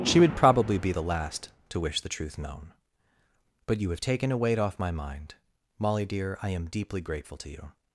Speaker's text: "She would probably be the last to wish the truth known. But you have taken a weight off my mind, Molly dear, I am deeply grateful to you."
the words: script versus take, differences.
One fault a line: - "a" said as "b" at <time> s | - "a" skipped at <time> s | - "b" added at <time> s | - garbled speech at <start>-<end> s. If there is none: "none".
none